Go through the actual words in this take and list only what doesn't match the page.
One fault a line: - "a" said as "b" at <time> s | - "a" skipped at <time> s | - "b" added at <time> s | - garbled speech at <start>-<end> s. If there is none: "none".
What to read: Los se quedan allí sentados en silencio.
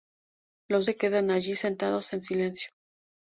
none